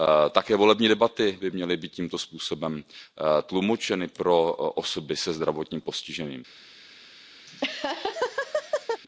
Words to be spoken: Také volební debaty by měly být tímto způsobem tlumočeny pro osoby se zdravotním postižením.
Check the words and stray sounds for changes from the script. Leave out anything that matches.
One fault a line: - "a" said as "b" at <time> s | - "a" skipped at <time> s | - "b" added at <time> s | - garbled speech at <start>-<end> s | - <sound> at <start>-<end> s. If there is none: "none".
- laugh at 7.5-9.0 s